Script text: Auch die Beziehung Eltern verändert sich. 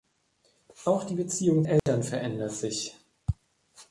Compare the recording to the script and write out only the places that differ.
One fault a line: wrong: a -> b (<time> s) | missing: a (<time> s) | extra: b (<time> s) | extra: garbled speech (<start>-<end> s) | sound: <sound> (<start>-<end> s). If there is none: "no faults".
sound: dropout (1.8-1.9 s)